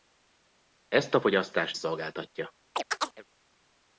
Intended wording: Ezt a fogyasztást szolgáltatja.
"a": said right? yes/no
yes